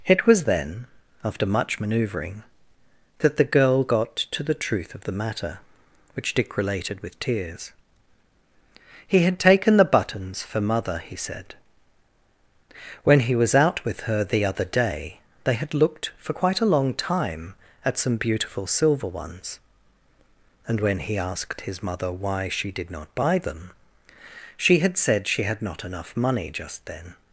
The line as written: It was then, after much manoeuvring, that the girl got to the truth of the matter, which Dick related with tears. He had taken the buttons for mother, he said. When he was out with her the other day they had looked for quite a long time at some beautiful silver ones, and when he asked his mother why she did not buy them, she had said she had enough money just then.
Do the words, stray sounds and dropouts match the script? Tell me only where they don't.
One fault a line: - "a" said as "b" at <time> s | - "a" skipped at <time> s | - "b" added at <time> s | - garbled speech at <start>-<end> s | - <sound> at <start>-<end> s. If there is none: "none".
- "not" added at 25.6 s